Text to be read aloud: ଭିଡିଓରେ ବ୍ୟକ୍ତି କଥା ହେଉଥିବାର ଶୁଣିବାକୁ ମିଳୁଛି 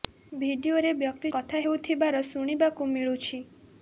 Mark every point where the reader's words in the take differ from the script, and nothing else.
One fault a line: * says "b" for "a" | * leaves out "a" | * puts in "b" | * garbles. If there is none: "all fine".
all fine